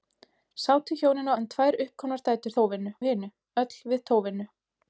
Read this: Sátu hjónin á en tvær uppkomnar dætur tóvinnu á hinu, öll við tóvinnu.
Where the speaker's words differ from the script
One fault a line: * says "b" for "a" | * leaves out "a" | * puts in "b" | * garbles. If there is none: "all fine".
all fine